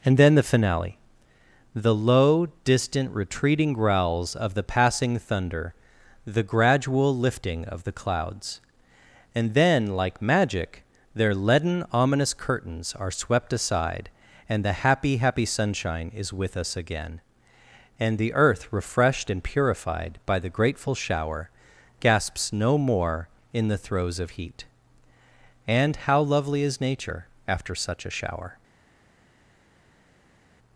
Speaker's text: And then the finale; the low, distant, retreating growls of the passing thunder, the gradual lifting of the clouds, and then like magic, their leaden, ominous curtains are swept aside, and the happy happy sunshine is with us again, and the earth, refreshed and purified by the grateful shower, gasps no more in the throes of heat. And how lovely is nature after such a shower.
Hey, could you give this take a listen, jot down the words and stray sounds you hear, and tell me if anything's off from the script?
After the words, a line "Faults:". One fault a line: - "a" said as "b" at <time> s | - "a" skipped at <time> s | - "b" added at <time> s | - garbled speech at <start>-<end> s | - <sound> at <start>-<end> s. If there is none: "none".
And then the finale; the low, distant, retreating growls of the passing thunder, the gradual lifting of the clouds, and then like magic, their leaden, ominous curtains are swept aside, and the happy happy sunshine is with us again, and the earth, refreshed and purified by the grateful shower, gasps no more in the throes of heat. And how lovely is nature after such a shower.
Faults:
none